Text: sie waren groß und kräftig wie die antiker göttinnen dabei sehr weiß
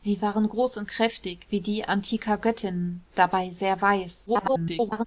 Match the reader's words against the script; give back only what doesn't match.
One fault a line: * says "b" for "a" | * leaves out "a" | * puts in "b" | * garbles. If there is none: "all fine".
* garbles